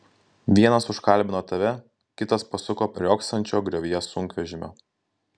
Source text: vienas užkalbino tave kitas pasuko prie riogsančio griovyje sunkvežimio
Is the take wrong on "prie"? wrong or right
wrong